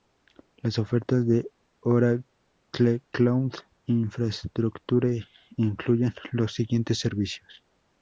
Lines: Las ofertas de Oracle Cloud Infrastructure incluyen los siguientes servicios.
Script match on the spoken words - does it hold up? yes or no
yes